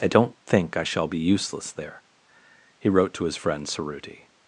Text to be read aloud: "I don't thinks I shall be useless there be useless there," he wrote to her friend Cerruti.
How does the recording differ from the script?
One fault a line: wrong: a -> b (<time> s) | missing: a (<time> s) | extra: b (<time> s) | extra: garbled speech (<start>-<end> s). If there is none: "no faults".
wrong: thinks -> think (0.5 s)
missing: be useless there (2.0 s)
wrong: her -> his (3.2 s)